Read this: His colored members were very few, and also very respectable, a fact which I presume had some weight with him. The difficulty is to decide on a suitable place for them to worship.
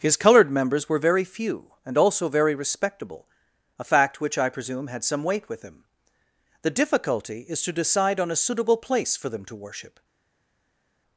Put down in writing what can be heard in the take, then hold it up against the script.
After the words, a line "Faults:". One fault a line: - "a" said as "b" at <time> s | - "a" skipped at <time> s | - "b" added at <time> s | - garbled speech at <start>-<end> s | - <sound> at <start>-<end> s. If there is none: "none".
His colored members were very few, and also very respectable, a fact which I presume had some weight with him. The difficulty is to decide on a suitable place for them to worship.
Faults:
none